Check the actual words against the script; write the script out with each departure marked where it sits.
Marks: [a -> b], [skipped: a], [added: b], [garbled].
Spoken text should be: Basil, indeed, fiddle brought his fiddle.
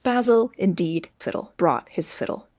Basil, indeed, fiddle brought his fiddle.